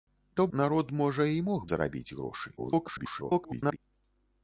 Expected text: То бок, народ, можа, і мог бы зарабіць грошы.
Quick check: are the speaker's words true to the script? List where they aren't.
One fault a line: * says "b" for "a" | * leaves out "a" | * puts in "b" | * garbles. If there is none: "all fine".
* leaves out "бок"
* leaves out "бы"
* garbles